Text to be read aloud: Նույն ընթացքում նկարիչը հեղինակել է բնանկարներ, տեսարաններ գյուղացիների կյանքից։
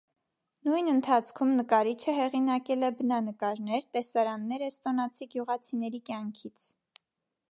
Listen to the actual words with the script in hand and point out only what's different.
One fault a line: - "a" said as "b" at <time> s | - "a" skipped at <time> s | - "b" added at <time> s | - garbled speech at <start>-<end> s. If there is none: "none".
- "էստոնացի" added at 4.7 s